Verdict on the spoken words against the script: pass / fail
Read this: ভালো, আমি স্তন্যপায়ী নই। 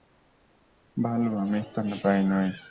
pass